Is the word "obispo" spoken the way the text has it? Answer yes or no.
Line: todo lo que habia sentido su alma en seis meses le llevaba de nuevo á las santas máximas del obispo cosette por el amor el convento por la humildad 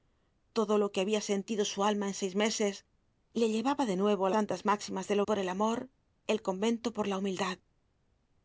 no